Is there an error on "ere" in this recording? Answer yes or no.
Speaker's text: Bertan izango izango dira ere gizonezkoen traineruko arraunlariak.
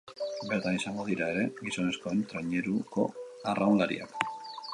no